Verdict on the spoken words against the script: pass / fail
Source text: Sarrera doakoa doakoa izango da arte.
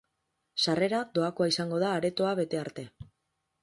fail